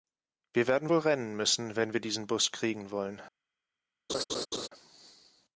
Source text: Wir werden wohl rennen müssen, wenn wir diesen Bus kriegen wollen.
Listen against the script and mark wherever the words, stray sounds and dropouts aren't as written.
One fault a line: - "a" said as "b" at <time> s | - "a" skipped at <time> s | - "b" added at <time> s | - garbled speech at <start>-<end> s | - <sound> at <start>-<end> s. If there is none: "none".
- laugh at 4.1-4.7 s